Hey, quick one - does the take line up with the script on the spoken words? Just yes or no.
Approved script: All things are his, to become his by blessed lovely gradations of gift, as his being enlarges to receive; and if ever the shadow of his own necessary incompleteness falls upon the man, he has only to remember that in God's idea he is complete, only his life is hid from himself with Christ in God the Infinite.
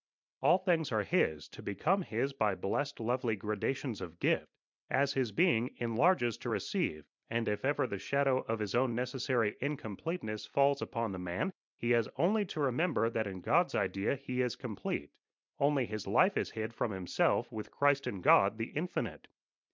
yes